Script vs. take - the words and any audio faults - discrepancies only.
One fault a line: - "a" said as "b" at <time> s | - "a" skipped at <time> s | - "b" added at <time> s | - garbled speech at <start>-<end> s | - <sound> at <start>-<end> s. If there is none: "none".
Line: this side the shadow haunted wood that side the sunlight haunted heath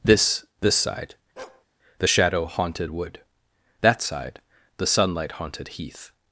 - "this" added at 0.6 s
- bark at 1.4-1.6 s